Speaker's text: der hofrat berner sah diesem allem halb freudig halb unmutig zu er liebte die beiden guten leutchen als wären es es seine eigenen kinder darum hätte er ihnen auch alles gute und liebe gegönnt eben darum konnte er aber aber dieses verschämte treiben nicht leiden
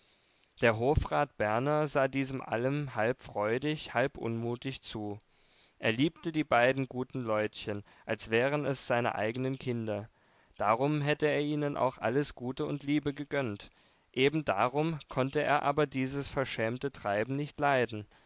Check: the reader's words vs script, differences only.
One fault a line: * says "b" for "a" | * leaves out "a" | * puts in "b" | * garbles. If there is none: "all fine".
* leaves out "es"
* leaves out "aber"